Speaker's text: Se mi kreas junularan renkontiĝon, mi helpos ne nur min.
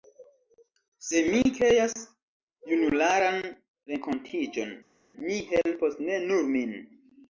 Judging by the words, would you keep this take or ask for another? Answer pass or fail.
pass